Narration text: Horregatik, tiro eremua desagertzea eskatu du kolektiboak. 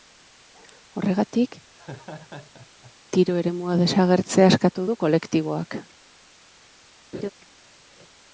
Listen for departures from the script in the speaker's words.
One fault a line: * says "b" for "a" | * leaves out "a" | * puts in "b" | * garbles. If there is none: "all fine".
all fine